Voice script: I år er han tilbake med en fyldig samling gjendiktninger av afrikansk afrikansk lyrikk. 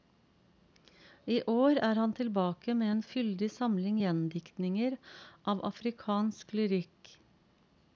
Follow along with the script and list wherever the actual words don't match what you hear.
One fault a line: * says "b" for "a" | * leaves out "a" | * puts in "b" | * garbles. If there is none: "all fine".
* leaves out "afrikansk"